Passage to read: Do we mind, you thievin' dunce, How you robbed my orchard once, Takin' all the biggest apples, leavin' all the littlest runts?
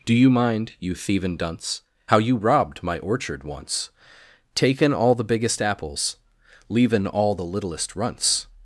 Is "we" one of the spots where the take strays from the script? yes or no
yes